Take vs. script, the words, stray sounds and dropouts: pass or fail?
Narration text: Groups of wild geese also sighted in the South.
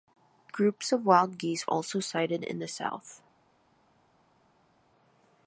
pass